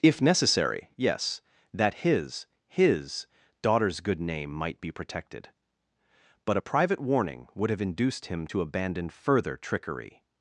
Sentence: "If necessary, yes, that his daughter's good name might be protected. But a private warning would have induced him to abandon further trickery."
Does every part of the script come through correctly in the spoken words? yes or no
no